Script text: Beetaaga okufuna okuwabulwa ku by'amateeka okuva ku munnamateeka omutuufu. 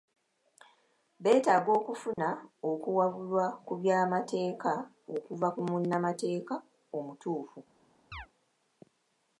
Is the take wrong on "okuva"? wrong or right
right